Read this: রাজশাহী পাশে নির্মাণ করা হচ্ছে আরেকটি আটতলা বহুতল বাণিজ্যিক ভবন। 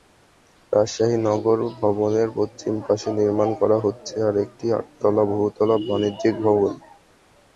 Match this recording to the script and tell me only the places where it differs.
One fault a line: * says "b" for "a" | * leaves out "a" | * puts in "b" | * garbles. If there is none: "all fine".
* puts in "নগর ভবনের পশ্চিম"